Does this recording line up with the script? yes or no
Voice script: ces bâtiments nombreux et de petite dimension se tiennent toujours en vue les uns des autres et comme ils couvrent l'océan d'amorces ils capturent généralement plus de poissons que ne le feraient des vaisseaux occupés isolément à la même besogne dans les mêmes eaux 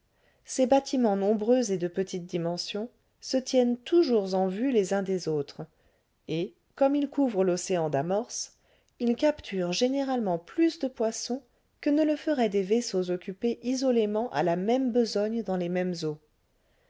yes